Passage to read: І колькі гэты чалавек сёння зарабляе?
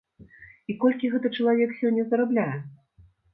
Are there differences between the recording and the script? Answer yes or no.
no